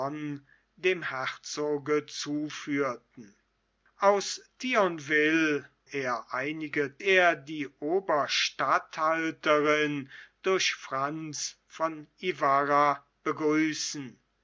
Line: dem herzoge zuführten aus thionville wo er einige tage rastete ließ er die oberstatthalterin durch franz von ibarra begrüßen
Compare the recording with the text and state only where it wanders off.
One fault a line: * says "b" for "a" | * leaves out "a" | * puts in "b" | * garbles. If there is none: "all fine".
* leaves out "wo"
* leaves out "tage rastete ließ"